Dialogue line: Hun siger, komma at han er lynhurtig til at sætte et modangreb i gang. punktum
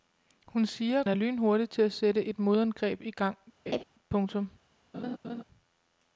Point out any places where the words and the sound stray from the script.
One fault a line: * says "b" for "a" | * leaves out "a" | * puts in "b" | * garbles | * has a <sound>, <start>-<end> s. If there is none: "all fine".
* leaves out "komma at han"
* has a laugh, 3.7-3.8 s
* has a laugh, 4.9-5.4 s